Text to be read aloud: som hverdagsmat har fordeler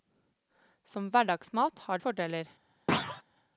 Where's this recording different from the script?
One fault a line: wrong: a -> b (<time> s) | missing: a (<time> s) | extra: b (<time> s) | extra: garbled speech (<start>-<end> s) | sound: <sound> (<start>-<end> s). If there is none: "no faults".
sound: thud (2.9-3.2 s)